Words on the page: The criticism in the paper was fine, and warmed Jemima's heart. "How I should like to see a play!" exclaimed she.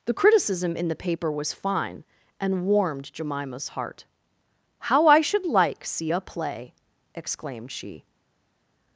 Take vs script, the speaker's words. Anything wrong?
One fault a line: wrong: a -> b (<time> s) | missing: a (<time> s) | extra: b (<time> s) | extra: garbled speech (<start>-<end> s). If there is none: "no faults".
missing: to (5.9 s)